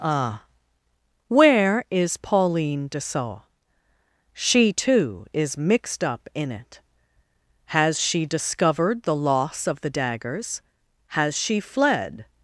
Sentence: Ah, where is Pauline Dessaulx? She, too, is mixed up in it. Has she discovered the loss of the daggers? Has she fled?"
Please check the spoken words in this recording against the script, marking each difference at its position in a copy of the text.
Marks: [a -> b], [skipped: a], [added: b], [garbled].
Ah, where is Pauline Dessaulx? She, too, is mixed up in it. Has she discovered the loss of the daggers? Has she fled?"